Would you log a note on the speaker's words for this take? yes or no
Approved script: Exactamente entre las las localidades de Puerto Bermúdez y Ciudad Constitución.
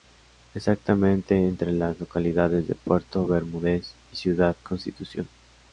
yes